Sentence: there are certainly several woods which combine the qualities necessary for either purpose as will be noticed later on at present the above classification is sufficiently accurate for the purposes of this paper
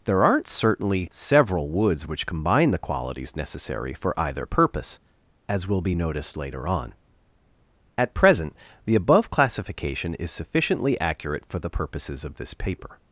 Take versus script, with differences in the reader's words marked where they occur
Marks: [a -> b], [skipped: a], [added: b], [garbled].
there [are -> aren't] certainly several woods which combine the qualities necessary for either purpose as will be noticed later on at present the above classification is sufficiently accurate for the purposes of this paper